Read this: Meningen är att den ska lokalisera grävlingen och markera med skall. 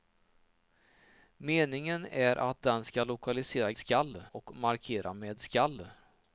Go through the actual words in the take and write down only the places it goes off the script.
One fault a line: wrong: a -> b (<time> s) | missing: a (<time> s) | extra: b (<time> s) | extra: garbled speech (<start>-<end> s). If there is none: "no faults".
wrong: grävlingen -> skall (3.8 s)